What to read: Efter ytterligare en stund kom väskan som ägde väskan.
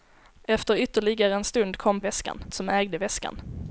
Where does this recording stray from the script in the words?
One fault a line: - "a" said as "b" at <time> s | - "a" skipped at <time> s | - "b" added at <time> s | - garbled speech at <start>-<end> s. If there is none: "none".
none